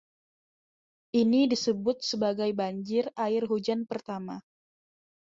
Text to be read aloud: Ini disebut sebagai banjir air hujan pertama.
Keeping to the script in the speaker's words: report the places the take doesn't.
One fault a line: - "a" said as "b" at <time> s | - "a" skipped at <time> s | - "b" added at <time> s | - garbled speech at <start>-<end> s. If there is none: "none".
none